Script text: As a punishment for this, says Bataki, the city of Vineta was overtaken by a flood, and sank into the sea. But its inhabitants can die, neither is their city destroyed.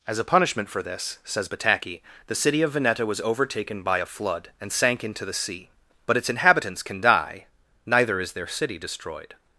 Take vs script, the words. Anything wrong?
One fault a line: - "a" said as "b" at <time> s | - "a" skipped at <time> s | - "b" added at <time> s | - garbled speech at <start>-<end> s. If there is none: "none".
none